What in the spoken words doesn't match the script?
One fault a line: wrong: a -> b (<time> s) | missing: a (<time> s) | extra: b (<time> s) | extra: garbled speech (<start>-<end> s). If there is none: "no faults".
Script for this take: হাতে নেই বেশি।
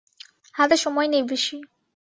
extra: সময় (0.8 s)